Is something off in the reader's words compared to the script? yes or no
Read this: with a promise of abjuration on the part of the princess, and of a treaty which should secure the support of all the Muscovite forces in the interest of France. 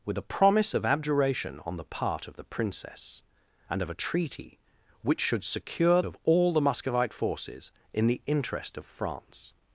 yes